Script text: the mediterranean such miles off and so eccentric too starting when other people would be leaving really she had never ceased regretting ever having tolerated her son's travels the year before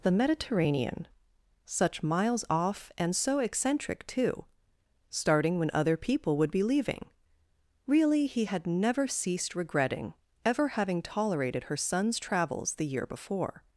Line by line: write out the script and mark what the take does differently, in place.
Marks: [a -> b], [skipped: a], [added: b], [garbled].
the mediterranean such miles off and so eccentric too starting when other people would be leaving really [she -> he] had never ceased regretting ever having tolerated her son's travels the year before